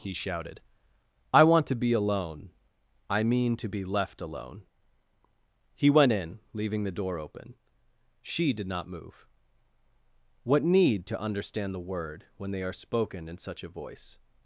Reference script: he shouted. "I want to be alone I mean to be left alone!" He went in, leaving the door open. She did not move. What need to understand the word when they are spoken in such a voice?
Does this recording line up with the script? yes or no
yes